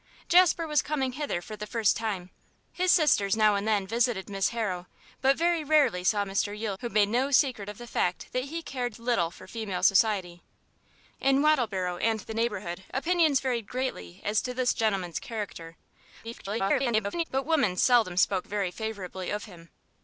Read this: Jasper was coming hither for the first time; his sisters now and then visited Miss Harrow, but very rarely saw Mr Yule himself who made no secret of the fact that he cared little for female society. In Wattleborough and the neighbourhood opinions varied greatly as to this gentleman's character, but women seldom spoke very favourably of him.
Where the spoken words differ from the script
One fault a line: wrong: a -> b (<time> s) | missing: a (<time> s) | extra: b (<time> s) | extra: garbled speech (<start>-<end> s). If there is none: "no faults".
missing: himself (6.8 s)
extra: garbled speech (16.2-17.2 s)